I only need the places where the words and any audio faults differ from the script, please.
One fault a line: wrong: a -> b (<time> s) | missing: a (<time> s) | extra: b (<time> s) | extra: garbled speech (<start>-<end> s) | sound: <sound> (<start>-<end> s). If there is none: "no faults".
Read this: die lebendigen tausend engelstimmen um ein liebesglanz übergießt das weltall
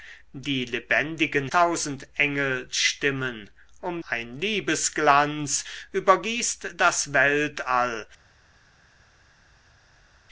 no faults